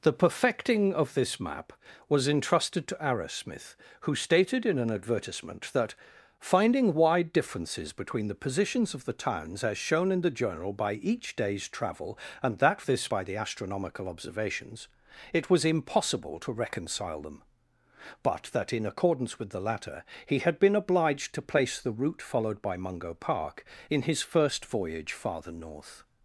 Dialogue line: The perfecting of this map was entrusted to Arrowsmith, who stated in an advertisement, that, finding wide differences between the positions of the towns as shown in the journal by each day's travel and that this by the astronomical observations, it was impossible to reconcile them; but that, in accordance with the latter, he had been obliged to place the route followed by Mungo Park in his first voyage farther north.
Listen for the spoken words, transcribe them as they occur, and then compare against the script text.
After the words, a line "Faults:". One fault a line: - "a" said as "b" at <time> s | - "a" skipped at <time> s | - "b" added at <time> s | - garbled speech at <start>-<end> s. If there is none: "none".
The perfecting of this map was entrusted to Arrowsmith, who stated in an advertisement, that, finding wide differences between the positions of the towns as shown in the journal by each day's travel and that this by the astronomical observations, it was impossible to reconcile them; but that, in accordance with the latter, he had been obliged to place the route followed by Mungo Park in his first voyage farther north.
Faults:
none